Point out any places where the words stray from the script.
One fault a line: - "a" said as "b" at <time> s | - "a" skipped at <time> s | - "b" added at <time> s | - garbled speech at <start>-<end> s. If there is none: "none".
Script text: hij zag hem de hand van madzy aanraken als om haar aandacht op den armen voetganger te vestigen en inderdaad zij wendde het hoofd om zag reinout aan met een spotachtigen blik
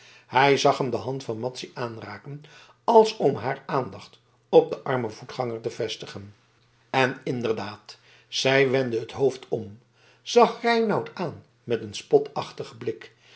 none